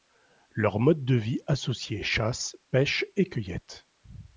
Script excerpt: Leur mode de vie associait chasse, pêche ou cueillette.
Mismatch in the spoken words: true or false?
true